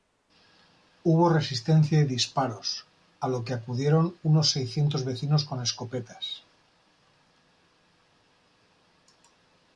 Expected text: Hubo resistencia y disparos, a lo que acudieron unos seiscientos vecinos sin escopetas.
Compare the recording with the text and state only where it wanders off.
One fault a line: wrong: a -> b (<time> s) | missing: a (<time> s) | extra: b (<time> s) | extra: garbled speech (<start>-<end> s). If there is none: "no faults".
wrong: sin -> con (5.5 s)